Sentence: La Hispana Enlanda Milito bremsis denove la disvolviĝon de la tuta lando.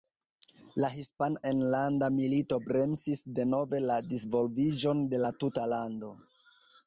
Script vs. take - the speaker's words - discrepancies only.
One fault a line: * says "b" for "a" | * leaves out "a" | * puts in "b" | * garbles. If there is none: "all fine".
all fine